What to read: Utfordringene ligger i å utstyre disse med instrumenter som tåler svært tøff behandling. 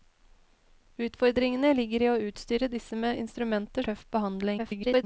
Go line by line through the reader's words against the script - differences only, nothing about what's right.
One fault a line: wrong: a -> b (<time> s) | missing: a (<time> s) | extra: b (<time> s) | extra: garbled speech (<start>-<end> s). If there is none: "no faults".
missing: som tåler svært (3.8 s)
extra: garbled speech (4.6-5.0 s)